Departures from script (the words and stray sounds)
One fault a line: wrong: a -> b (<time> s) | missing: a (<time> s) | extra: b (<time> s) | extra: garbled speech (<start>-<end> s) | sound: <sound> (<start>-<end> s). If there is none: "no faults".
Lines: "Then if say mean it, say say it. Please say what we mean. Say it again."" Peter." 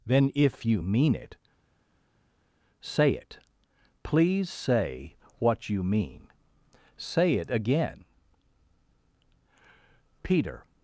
wrong: say -> you (0.7 s)
missing: say (3.1 s)
wrong: we -> you (5.7 s)